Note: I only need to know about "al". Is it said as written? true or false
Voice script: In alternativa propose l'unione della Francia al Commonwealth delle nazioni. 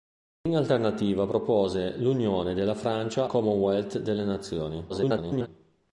false